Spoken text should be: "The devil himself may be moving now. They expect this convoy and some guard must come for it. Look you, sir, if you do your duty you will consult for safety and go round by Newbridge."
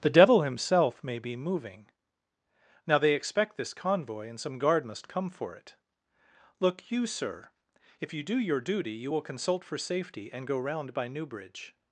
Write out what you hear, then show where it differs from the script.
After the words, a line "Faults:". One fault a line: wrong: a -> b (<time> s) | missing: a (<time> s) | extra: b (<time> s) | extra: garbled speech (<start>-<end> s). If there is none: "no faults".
"The devil himself may be moving now. They expect this convoy and some guard must come for it. Look you, sir, if you do your duty you will consult for safety and go round by Newbridge."
Faults:
no faults